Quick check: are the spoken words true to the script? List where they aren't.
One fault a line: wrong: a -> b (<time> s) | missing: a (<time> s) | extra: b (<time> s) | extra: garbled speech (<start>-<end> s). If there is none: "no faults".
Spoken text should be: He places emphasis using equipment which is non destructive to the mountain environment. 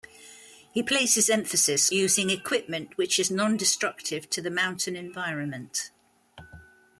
no faults